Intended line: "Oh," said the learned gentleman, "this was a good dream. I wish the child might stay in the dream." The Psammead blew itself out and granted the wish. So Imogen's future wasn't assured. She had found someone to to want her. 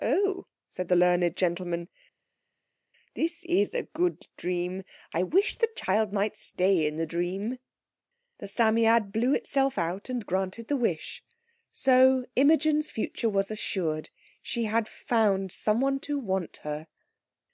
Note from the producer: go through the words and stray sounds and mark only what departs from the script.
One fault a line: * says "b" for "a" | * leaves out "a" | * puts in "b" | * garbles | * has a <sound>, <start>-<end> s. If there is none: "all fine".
* says "is" for "was"
* says "was" for "wasn't"
* leaves out "to"